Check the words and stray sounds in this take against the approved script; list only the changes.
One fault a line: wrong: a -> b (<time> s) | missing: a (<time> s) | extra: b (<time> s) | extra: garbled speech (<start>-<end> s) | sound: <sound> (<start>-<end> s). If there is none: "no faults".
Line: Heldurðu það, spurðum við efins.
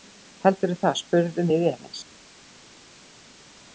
no faults